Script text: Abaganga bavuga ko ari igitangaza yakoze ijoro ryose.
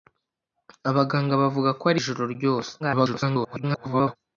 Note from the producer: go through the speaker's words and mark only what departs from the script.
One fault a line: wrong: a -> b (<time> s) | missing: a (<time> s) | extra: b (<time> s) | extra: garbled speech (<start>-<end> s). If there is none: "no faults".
missing: igitangaza yakoze (2.0 s)
extra: garbled speech (2.8-4.2 s)